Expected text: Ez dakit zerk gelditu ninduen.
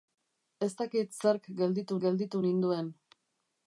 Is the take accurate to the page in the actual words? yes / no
no